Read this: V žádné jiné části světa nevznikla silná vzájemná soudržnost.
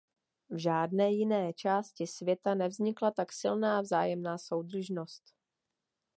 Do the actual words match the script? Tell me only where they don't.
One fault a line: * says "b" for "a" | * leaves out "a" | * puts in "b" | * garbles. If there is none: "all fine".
* puts in "tak"